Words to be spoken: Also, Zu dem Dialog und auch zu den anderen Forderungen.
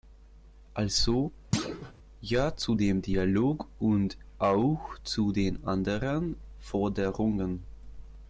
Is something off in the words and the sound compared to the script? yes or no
yes